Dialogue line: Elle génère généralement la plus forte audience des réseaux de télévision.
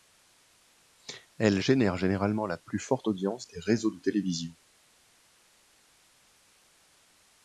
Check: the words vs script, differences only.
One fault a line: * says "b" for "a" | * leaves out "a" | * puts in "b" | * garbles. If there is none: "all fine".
all fine